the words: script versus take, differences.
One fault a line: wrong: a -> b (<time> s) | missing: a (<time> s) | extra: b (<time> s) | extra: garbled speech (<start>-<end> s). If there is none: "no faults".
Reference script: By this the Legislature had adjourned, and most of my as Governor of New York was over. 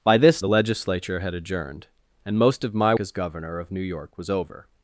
no faults